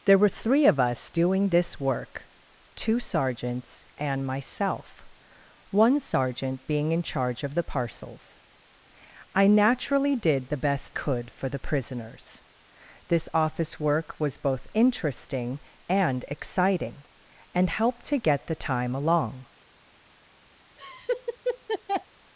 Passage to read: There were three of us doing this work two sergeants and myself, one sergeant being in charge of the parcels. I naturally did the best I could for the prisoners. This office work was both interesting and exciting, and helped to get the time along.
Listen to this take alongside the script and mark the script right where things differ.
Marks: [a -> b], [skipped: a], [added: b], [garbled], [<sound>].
There were three of us doing this work two sergeants and myself, one sergeant being in charge of the parcels. I naturally did the best [skipped: I] could for the prisoners. This office work was both interesting and exciting, and helped to get the time along. [laugh]